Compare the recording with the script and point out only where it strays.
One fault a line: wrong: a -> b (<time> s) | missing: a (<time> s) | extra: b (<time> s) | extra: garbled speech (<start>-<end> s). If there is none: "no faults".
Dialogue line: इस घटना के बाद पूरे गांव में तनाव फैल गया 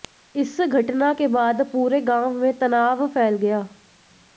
no faults